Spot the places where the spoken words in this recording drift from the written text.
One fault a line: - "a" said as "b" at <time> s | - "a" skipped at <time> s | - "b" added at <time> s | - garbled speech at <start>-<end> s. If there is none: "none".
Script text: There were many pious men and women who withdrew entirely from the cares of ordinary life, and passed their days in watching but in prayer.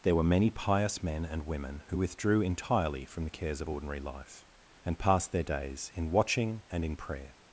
- "but" said as "and" at 6.7 s